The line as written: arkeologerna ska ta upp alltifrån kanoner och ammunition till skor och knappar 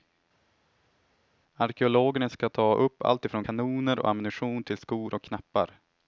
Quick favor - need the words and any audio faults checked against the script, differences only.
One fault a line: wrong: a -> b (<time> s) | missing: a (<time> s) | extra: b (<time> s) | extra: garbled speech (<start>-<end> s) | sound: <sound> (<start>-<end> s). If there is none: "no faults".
no faults